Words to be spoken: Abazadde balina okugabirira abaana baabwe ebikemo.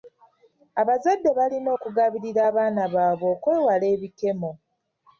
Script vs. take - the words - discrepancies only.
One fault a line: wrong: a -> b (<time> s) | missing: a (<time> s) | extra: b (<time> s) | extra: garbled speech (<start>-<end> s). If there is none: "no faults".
extra: okwewala (3.3 s)